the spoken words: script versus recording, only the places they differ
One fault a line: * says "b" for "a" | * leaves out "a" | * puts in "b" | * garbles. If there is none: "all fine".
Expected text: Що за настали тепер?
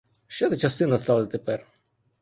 * puts in "часи"